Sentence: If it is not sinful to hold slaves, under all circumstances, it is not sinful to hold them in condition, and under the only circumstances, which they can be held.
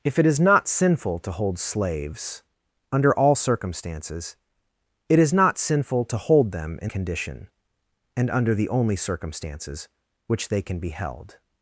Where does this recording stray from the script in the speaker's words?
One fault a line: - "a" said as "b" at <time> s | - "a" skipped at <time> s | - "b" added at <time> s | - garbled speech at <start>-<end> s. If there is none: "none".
none